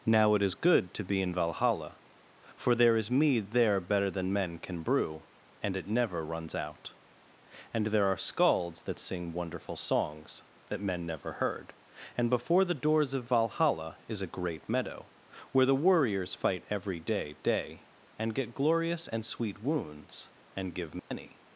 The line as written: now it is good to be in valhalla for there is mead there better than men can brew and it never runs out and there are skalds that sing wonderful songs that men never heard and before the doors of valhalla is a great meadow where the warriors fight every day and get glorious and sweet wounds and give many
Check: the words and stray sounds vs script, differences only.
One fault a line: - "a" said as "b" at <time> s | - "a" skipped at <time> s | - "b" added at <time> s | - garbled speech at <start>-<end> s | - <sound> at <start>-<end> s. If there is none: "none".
- "day" added at 17.4 s
- dropout at 21.0-21.1 s